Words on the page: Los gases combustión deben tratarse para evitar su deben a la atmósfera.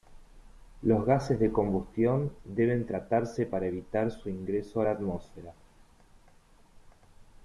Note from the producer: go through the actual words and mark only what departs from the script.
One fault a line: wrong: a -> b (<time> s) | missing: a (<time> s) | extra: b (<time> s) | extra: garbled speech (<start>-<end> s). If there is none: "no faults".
extra: de (1.4 s)
wrong: deben -> ingreso (4.3 s)